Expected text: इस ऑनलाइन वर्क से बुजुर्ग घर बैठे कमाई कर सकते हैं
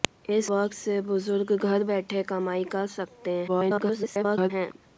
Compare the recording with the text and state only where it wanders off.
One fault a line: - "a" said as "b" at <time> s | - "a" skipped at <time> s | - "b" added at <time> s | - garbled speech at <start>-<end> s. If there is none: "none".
- "ऑनलाइन" skipped at 0.5 s
- garbled speech at 3.5-4.5 s